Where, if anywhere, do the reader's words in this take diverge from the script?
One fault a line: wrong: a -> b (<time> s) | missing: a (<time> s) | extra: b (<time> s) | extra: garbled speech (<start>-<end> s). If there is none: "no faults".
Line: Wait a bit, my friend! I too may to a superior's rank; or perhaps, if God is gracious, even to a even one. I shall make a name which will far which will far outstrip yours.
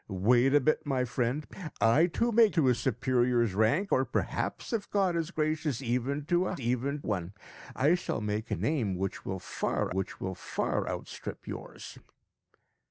no faults